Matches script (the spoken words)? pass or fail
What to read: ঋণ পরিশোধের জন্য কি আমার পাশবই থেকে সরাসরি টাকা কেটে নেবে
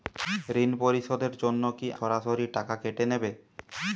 fail